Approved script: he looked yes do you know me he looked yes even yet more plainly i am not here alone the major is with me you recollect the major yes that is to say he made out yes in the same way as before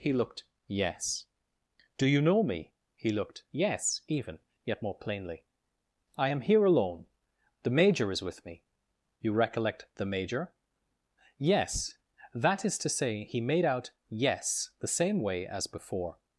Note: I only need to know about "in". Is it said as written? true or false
false